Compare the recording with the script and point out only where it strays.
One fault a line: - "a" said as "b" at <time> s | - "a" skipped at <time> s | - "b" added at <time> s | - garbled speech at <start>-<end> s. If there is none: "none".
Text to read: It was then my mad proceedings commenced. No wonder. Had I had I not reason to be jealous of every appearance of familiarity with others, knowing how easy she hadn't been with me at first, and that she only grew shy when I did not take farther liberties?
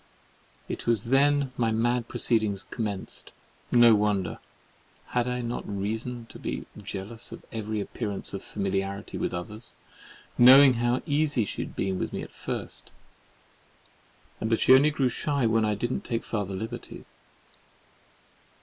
- "had I" skipped at 5.4 s
- "hadn't" said as "had" at 11.6 s